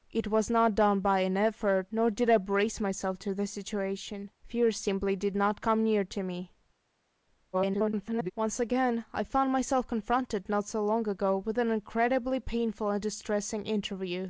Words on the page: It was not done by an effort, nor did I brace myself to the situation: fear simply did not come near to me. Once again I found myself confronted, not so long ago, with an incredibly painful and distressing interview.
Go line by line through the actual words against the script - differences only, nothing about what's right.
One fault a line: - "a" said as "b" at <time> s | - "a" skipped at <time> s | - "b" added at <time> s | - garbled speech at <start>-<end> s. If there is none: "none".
- garbled speech at 7.5-8.3 s